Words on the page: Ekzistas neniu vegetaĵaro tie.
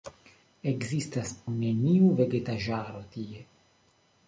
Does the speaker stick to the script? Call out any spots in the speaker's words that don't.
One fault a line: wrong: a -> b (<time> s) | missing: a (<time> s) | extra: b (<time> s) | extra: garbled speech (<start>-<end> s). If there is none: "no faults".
no faults